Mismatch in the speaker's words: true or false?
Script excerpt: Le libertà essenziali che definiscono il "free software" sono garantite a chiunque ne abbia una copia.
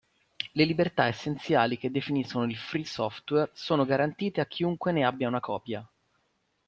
false